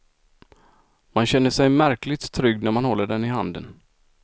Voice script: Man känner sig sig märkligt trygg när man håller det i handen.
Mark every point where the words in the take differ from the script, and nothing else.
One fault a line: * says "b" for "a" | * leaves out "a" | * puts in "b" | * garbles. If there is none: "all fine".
* leaves out "sig"
* says "den" for "det"